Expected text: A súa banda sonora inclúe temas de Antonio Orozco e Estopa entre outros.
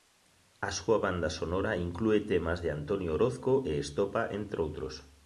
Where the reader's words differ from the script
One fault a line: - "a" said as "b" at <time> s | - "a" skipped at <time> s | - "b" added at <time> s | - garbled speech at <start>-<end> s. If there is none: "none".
none